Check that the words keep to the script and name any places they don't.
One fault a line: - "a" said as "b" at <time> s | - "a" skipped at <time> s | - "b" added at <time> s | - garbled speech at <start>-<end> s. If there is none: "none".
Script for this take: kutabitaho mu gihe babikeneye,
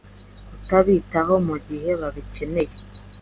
none